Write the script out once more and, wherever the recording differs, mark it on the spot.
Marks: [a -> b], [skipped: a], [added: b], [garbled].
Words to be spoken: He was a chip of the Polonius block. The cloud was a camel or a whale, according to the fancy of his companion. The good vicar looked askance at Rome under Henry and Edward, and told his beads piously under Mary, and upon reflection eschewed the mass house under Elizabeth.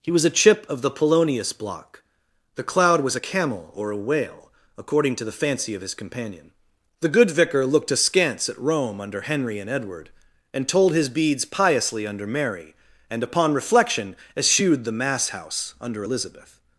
He was a chip of the Polonius block. The cloud was a camel or a whale, according to the fancy of his companion. The good vicar looked askance at Rome under Henry and Edward, and told his beads piously under Mary, and upon reflection eschewed the mass house under Elizabeth.